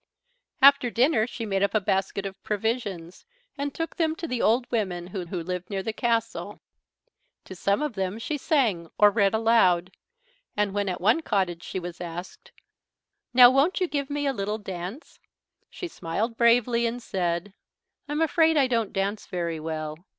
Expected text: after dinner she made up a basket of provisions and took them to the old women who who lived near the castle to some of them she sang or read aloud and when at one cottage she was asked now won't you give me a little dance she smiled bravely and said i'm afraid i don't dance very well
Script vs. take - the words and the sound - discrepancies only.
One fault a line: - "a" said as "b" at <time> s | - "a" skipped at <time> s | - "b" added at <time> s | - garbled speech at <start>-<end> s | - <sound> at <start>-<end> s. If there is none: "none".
none